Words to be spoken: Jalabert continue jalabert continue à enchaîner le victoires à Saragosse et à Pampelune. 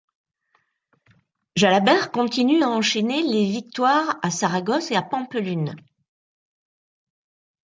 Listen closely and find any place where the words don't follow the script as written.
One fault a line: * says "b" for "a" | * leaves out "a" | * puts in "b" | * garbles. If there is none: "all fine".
* leaves out "jalabert continue"
* says "les" for "le"